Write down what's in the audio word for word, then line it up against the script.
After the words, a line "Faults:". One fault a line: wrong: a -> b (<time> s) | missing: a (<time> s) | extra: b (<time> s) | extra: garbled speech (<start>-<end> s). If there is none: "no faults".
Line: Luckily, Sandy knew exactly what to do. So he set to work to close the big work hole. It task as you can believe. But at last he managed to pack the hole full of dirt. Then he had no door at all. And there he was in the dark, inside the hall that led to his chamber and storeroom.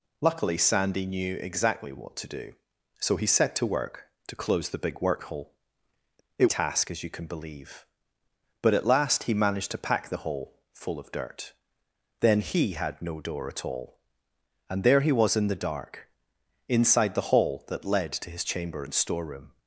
Luckily, Sandy knew exactly what to do. So he set to work to close the big work hole. It task as you can believe. But at last he managed to pack the hole full of dirt. Then he had no door at all. And there he was in the dark, inside the hall that led to his chamber and storeroom.
Faults:
no faults